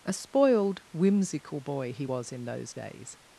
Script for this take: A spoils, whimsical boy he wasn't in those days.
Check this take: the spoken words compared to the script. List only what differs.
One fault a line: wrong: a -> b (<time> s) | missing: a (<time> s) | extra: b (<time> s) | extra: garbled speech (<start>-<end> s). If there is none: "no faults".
wrong: spoils -> spoiled (0.1 s)
wrong: wasn't -> was (2.0 s)